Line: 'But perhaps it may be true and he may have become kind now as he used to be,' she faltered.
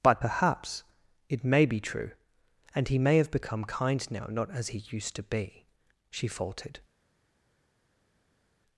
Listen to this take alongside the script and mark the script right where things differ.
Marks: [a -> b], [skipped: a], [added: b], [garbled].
'But perhaps it may be true and he may have become kind now [added: not] as he used to be,' she faltered.